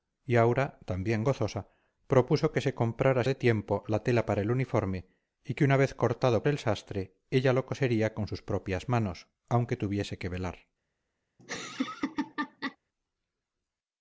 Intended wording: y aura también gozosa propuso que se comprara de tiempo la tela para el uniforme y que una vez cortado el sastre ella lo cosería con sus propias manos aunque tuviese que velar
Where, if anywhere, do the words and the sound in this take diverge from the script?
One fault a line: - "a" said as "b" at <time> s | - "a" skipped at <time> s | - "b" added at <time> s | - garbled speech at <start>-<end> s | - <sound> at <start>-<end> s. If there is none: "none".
- laugh at 11.4-12.8 s